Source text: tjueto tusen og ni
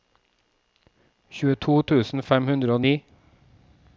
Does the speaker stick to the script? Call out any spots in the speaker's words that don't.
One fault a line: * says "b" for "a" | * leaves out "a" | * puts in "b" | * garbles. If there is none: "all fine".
* puts in "fem hundre"